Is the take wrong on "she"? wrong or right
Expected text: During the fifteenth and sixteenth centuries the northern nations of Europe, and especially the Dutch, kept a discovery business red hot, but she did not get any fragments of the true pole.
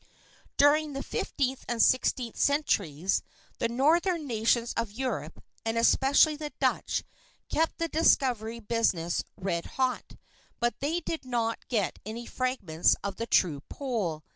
wrong